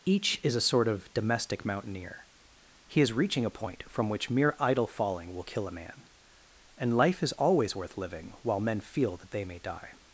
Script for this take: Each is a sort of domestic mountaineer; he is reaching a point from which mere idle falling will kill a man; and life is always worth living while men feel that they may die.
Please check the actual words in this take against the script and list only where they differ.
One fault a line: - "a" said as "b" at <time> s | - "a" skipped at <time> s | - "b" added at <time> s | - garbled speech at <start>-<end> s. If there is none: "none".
none